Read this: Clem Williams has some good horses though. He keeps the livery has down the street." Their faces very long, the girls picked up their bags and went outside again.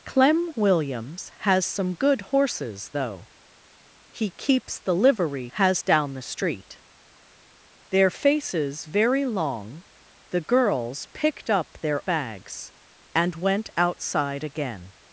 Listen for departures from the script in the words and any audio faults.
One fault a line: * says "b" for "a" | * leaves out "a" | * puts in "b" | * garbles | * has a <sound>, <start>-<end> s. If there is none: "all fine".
all fine